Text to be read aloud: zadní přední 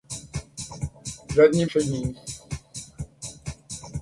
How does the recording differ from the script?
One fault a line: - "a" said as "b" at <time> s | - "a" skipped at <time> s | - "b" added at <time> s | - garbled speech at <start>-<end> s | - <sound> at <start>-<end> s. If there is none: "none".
none